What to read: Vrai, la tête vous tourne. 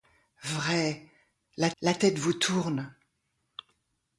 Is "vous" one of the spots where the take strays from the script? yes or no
no